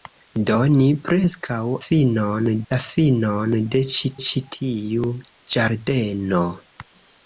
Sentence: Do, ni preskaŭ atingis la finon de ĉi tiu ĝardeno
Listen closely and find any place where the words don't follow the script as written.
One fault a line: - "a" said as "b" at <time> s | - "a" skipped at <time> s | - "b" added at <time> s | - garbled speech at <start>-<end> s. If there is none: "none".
- "atingis" said as "finon" at 1.8 s
- "ĉi" added at 4.3 s